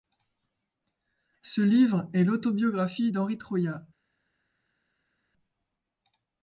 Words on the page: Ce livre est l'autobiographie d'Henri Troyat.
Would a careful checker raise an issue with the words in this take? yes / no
no